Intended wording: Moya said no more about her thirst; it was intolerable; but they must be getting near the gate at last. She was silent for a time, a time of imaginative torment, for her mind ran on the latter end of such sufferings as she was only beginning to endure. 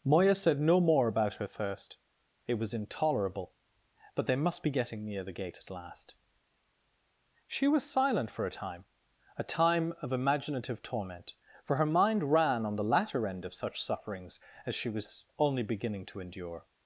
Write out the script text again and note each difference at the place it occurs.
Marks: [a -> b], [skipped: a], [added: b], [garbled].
Moya said no more about her thirst; it was intolerable; but they must be getting near the gate at last. She was silent for a time, a time of imaginative torment, for her mind ran on the latter end of such sufferings as she was only beginning to endure.